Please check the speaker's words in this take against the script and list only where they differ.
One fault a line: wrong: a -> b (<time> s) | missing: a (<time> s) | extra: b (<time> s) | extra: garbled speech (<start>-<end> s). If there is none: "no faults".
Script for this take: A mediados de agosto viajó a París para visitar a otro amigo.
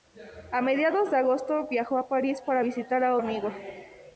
missing: otro (3.2 s)